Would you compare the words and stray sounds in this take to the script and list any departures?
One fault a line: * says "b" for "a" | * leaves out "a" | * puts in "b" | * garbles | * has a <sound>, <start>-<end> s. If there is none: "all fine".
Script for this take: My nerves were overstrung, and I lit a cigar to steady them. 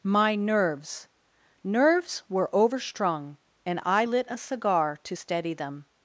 * puts in "nerves"